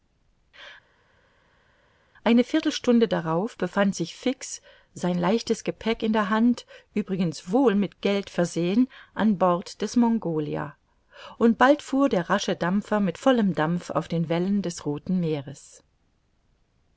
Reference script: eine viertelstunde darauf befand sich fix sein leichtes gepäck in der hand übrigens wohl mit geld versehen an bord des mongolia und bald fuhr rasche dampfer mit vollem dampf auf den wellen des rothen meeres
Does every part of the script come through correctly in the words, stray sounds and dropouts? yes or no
no